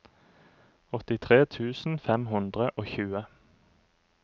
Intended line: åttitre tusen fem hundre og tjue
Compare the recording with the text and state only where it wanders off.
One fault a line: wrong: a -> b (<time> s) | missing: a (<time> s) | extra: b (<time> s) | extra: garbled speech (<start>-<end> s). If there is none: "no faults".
no faults